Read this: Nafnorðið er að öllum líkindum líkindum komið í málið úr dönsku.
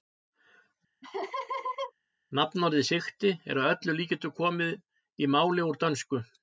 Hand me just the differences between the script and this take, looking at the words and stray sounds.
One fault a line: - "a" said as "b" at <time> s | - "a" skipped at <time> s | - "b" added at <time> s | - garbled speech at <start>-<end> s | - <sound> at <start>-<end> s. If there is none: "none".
- laugh at 1.0-1.9 s
- "sigti" added at 2.9 s
- "líkindum" skipped at 4.3 s